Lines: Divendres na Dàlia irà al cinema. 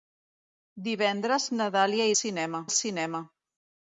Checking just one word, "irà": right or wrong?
wrong